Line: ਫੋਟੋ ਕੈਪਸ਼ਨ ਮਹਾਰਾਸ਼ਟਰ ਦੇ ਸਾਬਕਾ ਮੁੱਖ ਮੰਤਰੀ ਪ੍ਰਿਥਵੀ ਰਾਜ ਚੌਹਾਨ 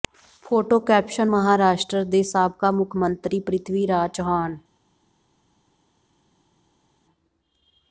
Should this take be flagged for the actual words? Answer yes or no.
no